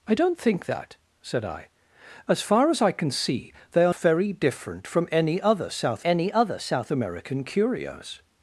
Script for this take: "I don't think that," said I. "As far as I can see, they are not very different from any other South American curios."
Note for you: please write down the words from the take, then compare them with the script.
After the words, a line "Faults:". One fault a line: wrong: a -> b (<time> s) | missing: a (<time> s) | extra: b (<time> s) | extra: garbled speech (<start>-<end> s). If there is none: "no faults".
"I don't think that," said I. "As far as I can see, they are very different from any other South any other South American curios."
Faults:
missing: not (3.9 s)
extra: any other South (6.0 s)